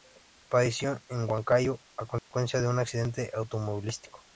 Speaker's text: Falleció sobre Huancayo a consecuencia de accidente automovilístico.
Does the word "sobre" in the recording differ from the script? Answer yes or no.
yes